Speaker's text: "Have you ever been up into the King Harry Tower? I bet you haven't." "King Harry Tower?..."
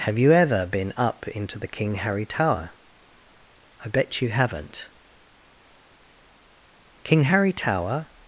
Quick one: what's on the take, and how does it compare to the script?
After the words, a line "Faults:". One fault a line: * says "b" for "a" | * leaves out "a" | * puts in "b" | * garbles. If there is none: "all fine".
"Have you ever been up into the King Harry Tower? I bet you haven't." "King Harry Tower?..."
Faults:
all fine